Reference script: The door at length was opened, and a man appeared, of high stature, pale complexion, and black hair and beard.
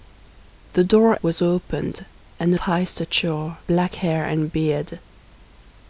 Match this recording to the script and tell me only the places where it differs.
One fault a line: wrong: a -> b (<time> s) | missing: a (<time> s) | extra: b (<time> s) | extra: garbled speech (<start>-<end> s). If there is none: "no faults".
missing: at length (1.1 s)
missing: man appeared of (2.6 s)
missing: pale complexion and (3.6 s)